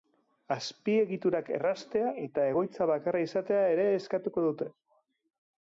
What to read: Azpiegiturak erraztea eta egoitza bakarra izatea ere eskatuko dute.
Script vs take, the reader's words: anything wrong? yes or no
no